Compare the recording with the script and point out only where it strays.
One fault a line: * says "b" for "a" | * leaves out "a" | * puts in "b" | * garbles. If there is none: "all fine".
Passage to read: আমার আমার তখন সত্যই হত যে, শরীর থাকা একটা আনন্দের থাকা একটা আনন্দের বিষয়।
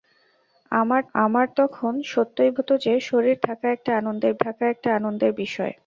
all fine